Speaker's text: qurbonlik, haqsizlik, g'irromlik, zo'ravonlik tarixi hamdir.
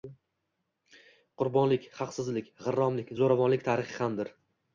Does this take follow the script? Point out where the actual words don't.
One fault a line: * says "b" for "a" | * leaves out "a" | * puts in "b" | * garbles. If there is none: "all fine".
all fine